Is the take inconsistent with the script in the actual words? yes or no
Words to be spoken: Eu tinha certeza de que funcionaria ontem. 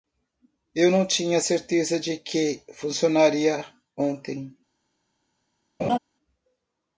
yes